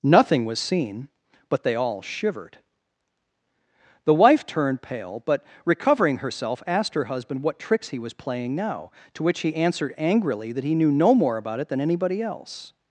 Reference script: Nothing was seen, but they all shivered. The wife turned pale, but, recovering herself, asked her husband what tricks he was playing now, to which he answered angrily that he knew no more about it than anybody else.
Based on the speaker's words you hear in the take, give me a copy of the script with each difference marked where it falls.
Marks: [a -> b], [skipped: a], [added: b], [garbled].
Nothing was seen, but they all shivered. The wife turned pale, but, recovering herself, asked her husband what tricks he was playing now, to which he answered angrily that he knew no more about it than anybody else.